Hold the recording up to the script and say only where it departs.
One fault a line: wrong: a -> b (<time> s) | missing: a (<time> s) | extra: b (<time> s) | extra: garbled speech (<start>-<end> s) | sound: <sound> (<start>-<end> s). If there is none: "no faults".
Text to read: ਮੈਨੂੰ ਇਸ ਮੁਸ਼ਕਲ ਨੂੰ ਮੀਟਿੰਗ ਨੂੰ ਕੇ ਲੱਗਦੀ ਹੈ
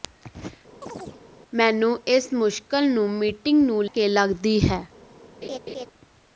sound: chirp (0.8-1.2 s)
sound: laugh (5.4-5.9 s)